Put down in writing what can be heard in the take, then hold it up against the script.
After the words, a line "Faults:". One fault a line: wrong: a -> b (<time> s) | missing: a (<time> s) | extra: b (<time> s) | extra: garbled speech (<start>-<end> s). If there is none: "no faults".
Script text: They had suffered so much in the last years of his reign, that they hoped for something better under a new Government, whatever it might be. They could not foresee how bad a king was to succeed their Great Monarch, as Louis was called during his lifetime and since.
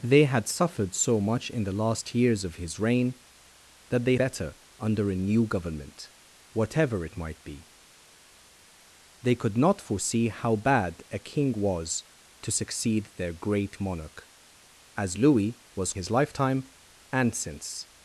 They had suffered so much in the last years of his reign, that they better under a new Government, whatever it might be. They could not foresee how bad a king was to succeed their Great Monarch, as Louis was his lifetime and since.
Faults:
missing: hoped for something (4.2 s)
missing: called during (15.9 s)